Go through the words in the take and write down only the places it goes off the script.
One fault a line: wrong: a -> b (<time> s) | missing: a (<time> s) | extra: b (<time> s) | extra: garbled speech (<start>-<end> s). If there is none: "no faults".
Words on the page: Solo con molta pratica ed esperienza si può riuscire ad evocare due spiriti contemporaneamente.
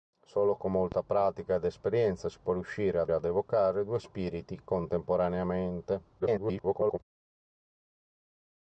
extra: ad (3.1 s)
extra: garbled speech (6.2-7.0 s)